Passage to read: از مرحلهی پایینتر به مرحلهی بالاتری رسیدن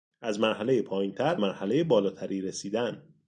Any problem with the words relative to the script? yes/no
yes